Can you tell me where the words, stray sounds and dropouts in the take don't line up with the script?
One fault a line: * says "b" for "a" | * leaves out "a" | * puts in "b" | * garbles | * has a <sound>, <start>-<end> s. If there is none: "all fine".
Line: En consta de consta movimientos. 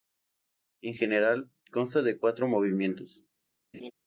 * puts in "general"
* says "cuatro" for "consta"
* has a laugh, 3.7-3.9 s